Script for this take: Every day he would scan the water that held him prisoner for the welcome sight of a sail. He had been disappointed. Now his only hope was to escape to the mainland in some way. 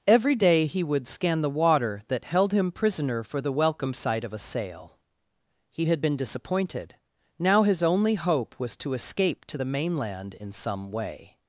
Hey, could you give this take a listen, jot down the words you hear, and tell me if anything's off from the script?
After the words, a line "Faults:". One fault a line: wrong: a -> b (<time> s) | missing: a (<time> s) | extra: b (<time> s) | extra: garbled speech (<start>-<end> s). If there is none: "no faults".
Every day he would scan the water that held him prisoner for the welcome sight of a sail. He had been disappointed. Now his only hope was to escape to the mainland in some way.
Faults:
no faults